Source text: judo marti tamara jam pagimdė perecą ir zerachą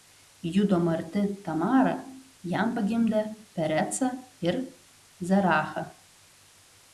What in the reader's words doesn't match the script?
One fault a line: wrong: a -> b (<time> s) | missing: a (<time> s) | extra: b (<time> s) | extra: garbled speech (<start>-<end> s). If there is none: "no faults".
no faults